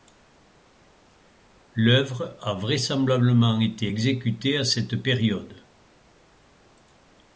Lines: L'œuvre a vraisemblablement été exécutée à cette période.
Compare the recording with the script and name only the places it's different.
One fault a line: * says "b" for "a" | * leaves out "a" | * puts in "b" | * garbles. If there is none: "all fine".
all fine